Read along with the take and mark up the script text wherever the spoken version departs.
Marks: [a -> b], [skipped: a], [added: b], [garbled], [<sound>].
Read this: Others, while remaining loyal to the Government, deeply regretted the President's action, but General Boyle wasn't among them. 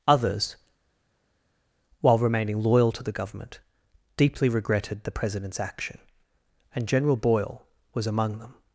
Others, while remaining loyal to the Government, deeply regretted the President's action, [but -> and] General Boyle [wasn't -> was] among them.